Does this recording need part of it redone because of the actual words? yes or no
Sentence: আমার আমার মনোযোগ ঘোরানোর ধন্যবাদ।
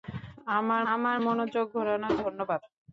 no